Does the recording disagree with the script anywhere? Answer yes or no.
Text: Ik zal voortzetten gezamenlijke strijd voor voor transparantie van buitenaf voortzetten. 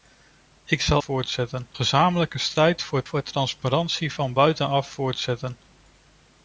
no